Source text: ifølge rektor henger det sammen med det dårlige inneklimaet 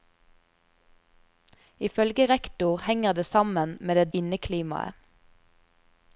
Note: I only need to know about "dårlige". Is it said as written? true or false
false